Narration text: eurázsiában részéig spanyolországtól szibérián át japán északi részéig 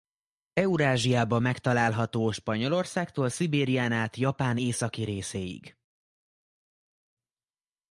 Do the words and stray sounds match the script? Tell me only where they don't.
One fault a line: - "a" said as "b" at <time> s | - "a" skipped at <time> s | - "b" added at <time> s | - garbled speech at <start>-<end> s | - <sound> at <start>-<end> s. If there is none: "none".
- "részéig" said as "megtalálható" at 1.4 s